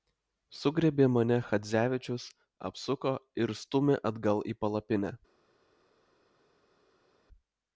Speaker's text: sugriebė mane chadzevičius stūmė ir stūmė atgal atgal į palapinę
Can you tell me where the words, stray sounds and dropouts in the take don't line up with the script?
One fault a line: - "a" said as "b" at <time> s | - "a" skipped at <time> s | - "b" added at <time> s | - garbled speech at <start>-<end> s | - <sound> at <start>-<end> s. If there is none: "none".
- "stūmė" said as "apsuko" at 2.7 s
- "atgal" skipped at 4.5 s